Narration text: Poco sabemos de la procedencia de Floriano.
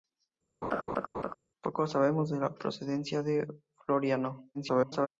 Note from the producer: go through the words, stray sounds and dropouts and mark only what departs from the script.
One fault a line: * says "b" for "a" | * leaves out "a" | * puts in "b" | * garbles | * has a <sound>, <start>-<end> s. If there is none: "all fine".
* has a laugh, 0.6-1.3 s
* garbles